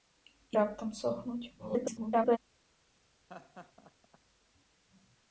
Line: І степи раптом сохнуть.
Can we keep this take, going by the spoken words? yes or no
no